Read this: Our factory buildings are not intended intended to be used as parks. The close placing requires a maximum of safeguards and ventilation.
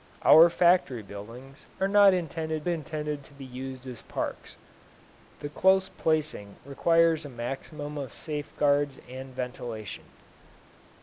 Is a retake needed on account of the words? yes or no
no